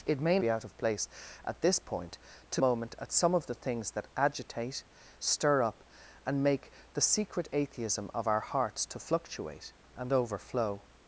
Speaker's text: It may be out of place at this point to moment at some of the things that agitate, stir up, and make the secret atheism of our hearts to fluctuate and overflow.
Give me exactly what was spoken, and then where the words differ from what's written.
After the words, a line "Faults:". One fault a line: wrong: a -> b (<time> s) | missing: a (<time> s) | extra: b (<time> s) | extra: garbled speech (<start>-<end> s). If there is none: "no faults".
It may be out of place at this point to moment at some of the things that agitate, stir up, and make the secret atheism of our hearts to fluctuate and overflow.
Faults:
no faults